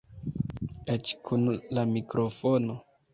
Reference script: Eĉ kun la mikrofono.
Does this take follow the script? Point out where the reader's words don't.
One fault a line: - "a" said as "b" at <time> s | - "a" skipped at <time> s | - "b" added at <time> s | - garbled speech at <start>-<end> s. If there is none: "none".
none